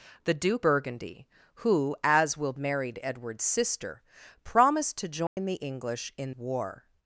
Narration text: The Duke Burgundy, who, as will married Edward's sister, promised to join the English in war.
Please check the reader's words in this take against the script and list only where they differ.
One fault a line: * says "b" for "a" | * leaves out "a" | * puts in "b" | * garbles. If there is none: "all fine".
all fine